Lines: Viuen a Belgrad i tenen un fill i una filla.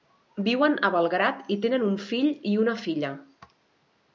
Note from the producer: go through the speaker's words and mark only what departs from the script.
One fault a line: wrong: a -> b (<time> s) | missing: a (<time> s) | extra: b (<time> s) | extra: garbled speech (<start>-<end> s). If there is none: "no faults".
no faults